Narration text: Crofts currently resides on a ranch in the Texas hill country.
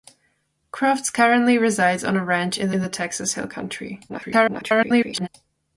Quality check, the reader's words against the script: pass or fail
fail